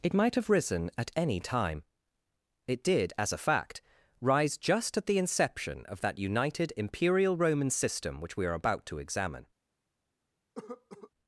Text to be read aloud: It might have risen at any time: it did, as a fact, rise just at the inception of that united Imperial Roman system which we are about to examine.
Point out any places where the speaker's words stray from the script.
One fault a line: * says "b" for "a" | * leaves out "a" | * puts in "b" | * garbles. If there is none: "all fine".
all fine